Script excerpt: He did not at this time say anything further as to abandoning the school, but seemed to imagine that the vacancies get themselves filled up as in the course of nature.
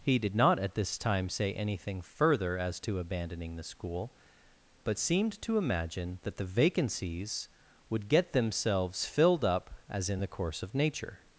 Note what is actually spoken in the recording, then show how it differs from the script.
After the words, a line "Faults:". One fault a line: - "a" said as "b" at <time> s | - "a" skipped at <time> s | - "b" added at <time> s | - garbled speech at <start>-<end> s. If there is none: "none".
He did not at this time say anything further as to abandoning the school, but seemed to imagine that the vacancies would get themselves filled up as in the course of nature.
Faults:
- "would" added at 7.9 s